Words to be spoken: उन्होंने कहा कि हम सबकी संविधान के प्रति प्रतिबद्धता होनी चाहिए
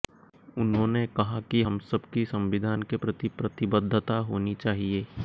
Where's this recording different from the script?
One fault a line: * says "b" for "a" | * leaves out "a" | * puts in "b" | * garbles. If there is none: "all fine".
all fine